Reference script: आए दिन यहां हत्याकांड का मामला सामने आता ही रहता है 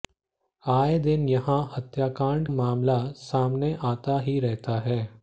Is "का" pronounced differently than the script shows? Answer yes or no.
yes